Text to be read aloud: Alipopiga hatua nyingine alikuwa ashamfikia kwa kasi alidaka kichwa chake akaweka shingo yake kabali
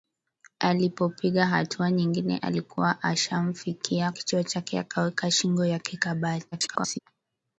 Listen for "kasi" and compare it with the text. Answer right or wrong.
wrong